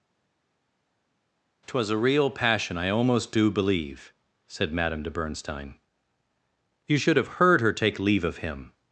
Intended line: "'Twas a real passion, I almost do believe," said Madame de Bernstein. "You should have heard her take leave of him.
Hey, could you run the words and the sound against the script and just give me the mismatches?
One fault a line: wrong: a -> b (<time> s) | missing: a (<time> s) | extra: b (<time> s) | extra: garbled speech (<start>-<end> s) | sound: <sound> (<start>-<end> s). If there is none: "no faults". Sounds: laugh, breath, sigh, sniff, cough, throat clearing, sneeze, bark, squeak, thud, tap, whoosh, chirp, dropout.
no faults